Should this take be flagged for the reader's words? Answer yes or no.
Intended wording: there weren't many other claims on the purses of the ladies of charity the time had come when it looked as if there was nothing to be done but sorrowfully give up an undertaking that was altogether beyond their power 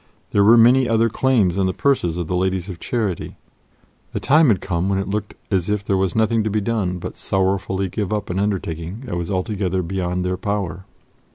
yes